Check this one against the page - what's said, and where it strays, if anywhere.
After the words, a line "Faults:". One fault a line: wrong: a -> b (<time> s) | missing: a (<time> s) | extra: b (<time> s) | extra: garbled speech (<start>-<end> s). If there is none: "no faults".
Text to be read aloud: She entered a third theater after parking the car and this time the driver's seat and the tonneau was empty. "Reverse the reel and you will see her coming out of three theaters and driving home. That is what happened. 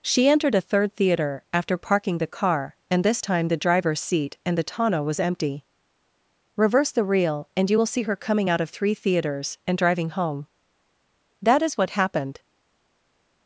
She entered a third theater after parking the car and this time the driver's seat and the tonneau was empty. "Reverse the reel and you will see her coming out of three theaters and driving home. That is what happened.
Faults:
no faults